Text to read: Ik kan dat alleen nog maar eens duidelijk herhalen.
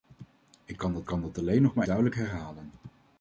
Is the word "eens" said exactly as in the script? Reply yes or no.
no